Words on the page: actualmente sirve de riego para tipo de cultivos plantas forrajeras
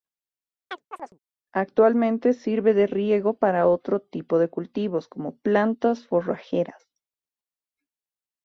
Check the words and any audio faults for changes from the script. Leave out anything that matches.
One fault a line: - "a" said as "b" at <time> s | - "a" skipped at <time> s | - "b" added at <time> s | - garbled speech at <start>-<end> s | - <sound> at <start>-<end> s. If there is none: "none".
- chirp at 0.7-1.2 s
- "otro" added at 3.7 s
- "como" added at 5.1 s